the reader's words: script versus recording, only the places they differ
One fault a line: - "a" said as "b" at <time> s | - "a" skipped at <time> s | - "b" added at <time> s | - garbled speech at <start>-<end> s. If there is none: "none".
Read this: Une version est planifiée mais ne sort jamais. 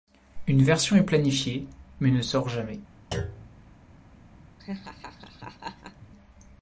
none